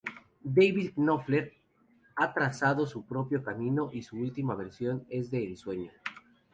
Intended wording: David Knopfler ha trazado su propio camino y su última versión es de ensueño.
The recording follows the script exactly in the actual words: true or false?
true